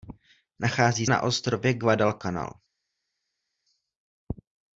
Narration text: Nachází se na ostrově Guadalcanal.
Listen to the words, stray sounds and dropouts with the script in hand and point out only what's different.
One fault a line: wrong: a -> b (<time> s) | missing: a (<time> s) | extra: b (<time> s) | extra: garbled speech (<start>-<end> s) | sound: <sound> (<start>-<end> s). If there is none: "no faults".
missing: se (1.1 s)